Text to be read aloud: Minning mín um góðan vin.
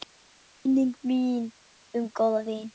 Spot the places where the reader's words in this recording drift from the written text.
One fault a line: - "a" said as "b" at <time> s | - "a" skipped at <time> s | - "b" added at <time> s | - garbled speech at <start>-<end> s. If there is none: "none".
none